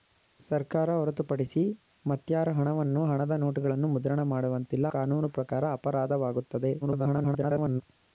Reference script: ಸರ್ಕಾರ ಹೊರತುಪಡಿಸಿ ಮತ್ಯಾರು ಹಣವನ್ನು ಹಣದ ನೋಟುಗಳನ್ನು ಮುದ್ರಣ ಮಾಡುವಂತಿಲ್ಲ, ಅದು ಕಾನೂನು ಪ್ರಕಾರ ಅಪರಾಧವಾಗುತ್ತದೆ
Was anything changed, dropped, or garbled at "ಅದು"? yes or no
yes